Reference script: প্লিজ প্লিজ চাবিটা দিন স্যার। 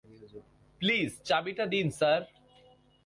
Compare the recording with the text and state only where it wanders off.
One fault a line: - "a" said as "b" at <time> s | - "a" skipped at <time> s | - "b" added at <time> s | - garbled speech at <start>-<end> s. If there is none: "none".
- "প্লিজ" skipped at 1.1 s